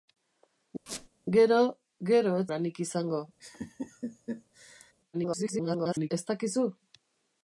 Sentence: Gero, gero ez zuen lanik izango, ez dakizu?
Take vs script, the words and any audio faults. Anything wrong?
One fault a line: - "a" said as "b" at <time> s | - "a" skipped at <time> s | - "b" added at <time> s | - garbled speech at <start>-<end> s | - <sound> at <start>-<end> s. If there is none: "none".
- squeak at 0.9-1.1 s
- "zuen" skipped at 2.5 s
- laugh at 3.4-4.9 s
- garbled speech at 5.1-6.1 s